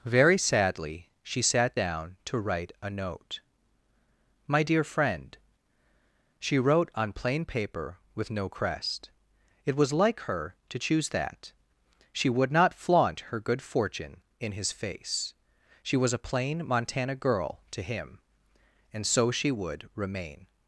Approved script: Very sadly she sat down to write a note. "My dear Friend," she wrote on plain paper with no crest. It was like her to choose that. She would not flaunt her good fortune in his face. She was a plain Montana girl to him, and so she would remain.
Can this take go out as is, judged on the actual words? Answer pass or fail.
pass